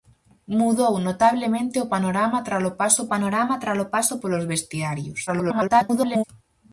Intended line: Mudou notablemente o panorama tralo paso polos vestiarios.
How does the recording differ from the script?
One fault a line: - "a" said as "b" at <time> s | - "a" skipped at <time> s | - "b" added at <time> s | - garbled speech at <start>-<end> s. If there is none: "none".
- "panorama tralo paso" added at 3.1 s
- garbled speech at 5.3-6.2 s